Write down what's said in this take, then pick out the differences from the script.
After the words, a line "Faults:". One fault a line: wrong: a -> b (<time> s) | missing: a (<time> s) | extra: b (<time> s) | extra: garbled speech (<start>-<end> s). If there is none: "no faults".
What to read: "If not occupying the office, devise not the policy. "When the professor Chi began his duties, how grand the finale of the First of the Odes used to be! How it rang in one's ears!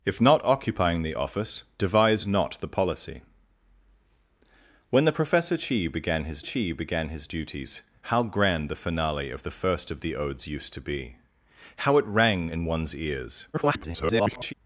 "If not occupying the office, devise not the policy. "When the professor Chi began his Chi began his duties, how grand the finale of the First of the Odes used to be! How it rang in one's ears! [garbled]
Faults:
extra: Chi began his (6.4 s)
extra: garbled speech (13.5-14.5 s)